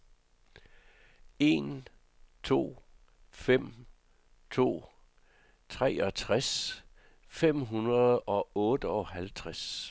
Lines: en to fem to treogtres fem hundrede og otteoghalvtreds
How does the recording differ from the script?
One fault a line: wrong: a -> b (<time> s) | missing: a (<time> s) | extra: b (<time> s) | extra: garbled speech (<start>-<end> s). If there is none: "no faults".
no faults